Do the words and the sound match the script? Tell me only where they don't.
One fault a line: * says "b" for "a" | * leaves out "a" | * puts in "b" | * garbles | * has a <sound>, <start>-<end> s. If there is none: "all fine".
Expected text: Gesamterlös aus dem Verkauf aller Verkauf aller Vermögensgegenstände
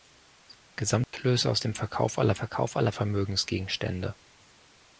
* has a dropout, 1.0-1.1 s